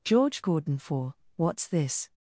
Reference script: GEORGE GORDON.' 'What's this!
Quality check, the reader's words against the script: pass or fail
fail